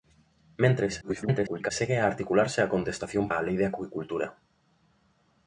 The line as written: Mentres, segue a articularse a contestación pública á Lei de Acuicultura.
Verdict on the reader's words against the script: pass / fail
fail